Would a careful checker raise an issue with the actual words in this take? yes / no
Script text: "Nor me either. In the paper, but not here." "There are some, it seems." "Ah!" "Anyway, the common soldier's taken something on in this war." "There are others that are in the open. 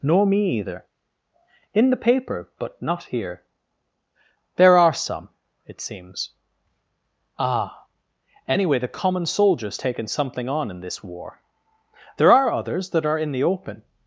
no